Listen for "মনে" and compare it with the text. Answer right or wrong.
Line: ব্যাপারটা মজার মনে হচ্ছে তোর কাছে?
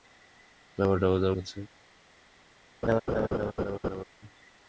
wrong